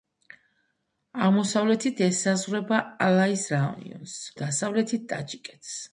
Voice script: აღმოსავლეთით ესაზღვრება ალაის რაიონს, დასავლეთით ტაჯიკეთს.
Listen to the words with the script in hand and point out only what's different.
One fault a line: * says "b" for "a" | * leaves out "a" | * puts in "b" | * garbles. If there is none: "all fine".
all fine